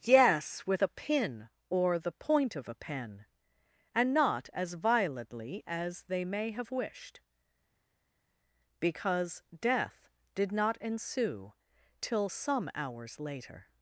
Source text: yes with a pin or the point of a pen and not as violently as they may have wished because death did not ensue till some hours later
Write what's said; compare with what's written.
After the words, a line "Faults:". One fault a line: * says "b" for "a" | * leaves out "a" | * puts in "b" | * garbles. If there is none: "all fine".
yes with a pin or the point of a pen and not as violently as they may have wished because death did not ensue till some hours later
Faults:
all fine